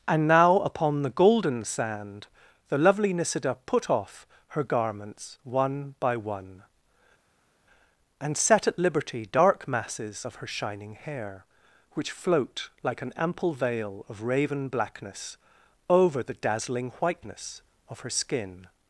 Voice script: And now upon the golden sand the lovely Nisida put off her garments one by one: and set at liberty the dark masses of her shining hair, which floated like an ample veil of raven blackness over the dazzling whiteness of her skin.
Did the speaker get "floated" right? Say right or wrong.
wrong